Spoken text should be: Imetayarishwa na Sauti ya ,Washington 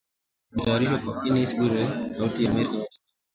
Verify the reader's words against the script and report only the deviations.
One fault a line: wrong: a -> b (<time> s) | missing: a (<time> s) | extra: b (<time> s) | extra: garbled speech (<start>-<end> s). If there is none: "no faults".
extra: Kennes Bwire (1.2 s)
extra: Amerika (2.5 s)